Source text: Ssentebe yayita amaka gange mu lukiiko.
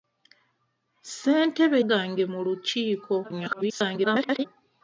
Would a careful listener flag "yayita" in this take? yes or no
yes